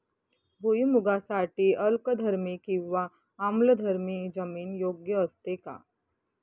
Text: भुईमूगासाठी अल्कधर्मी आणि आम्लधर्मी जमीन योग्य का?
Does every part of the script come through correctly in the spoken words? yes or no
no